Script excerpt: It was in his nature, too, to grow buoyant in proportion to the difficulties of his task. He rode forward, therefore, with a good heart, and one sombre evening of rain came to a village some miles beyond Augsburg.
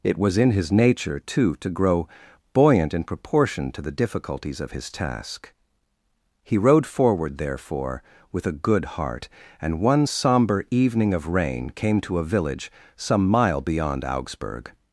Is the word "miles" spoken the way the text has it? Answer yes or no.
no